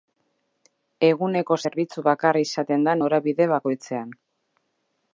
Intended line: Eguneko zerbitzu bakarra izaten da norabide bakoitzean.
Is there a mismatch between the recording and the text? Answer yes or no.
no